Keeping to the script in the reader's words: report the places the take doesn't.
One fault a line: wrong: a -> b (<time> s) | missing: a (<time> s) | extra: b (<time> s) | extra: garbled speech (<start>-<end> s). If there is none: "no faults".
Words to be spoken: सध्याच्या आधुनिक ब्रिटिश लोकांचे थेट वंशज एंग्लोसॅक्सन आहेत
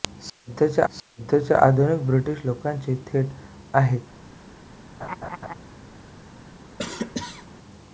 extra: सध्याच्या (0.9 s)
missing: वंशज एंग्लोसॅक्सन (3.3 s)